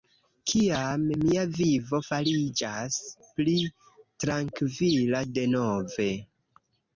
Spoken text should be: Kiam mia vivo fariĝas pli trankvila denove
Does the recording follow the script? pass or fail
pass